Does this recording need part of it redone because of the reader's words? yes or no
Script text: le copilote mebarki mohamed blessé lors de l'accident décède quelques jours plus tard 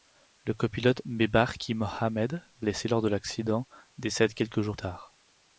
yes